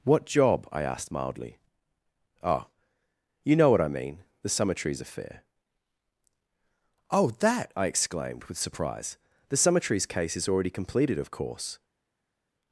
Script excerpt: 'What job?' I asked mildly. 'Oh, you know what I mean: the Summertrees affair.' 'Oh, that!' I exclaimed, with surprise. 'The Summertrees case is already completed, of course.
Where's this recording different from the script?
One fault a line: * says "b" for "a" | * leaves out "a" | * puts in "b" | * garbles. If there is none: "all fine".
all fine